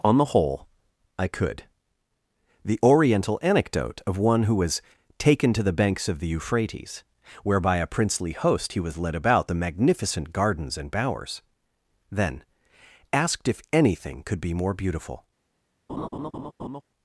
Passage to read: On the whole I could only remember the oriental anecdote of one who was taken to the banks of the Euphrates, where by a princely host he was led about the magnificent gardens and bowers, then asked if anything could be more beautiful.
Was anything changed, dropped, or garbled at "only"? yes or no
yes